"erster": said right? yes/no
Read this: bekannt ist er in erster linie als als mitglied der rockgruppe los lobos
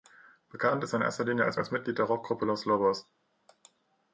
yes